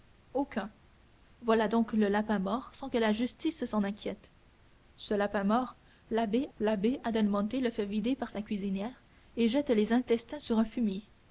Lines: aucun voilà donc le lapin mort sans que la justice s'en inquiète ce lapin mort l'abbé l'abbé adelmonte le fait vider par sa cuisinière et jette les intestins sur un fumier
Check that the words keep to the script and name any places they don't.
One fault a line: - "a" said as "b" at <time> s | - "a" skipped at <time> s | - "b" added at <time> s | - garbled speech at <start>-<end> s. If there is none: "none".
none